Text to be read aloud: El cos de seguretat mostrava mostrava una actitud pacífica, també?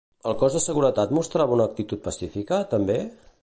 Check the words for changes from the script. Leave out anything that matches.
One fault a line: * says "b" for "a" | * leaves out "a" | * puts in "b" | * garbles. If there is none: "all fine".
* leaves out "mostrava"